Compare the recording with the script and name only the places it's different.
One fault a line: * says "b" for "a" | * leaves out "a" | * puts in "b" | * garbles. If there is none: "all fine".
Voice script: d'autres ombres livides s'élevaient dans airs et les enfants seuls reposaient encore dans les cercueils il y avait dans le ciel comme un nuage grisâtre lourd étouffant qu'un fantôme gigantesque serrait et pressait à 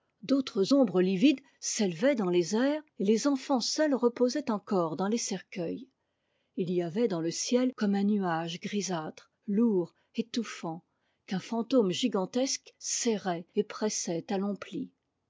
* puts in "les"